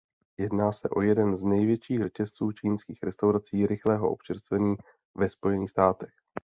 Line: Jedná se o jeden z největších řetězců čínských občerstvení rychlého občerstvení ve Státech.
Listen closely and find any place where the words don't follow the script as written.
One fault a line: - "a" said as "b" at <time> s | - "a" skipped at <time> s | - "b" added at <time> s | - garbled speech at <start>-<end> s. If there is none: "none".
- "občerstvení" said as "restaurací" at 3.0 s
- "Spojených" added at 5.3 s